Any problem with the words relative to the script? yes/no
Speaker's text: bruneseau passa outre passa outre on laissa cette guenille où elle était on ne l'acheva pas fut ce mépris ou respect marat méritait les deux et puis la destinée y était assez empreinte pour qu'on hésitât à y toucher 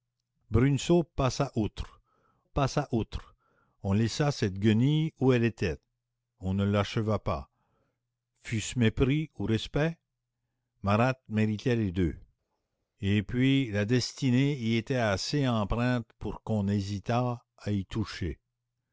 no